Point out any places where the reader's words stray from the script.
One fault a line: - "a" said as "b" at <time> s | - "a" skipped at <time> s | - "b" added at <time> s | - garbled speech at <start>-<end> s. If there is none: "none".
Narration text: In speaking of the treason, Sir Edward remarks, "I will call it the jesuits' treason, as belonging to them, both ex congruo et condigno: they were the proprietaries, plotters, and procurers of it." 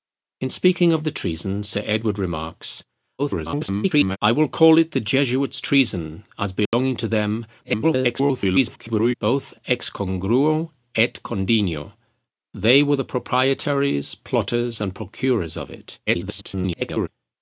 - garbled speech at 3.2-4.2 s
- garbled speech at 7.6-9.1 s
- garbled speech at 16.1-17.1 s